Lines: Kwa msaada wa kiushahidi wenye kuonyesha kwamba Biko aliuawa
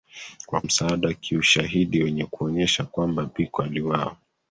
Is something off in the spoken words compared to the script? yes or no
no